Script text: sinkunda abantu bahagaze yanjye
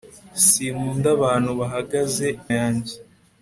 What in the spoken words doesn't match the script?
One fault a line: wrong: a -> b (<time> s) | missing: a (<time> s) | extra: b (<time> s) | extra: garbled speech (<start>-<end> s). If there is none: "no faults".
no faults